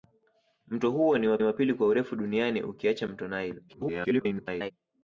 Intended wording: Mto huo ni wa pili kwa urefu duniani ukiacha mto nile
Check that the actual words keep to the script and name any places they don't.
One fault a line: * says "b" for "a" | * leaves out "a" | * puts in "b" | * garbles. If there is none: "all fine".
* puts in "wa"
* garbles